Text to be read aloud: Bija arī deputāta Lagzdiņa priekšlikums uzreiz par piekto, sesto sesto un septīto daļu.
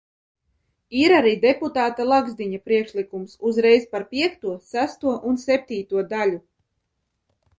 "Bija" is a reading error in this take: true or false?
true